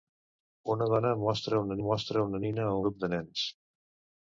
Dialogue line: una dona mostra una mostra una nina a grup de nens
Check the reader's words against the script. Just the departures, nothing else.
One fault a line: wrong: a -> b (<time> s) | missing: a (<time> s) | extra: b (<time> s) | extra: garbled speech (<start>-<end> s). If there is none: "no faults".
no faults